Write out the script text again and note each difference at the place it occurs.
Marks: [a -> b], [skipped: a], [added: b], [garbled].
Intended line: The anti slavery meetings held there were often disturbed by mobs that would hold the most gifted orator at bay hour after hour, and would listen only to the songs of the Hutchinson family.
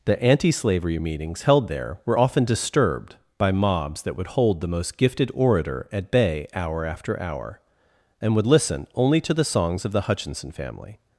The anti slavery meetings held there were often disturbed by mobs that would hold the most gifted orator at bay hour after hour, and would listen only to the songs of the Hutchinson family.